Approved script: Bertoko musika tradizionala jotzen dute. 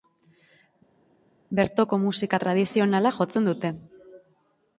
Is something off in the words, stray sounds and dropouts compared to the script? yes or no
no